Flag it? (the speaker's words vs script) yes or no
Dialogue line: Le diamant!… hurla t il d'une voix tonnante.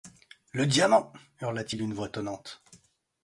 no